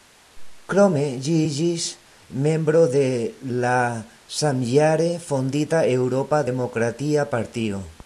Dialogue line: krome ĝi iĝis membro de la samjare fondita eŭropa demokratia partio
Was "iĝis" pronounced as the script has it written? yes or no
yes